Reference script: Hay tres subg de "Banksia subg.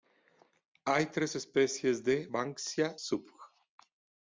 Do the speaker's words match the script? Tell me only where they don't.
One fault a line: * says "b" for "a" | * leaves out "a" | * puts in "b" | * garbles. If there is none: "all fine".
* says "especies" for "subg"